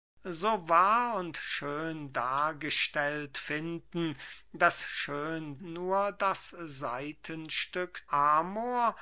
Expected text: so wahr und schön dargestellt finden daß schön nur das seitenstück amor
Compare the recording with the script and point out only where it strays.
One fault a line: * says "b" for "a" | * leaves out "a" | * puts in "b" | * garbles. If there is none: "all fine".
all fine